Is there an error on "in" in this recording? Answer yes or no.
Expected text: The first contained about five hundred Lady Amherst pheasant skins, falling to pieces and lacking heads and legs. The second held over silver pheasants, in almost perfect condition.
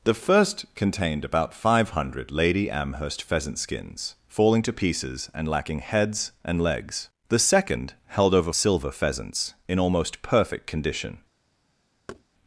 no